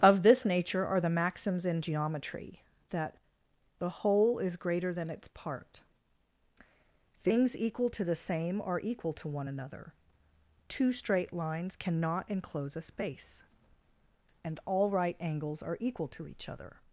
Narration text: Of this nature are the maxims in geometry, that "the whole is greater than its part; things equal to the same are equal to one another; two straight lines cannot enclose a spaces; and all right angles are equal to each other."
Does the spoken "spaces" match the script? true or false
false